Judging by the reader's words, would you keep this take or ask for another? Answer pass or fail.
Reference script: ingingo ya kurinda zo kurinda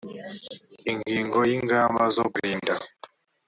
fail